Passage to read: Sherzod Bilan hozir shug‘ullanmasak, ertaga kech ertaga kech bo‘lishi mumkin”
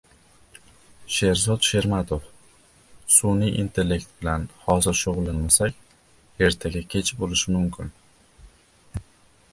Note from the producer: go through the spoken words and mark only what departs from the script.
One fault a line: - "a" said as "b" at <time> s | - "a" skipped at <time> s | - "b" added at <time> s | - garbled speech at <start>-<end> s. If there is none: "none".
- "Shermatov Sun'iy intellekt" added at 1.7 s
- "ertaga kech" skipped at 7.2 s